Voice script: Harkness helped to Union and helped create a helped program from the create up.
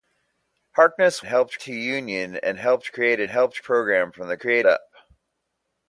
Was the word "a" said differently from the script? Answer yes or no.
no